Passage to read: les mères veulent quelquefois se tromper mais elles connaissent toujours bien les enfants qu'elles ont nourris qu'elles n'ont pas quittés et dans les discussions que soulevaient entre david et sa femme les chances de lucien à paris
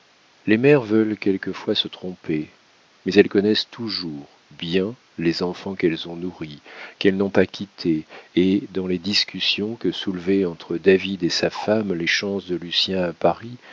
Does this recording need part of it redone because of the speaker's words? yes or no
no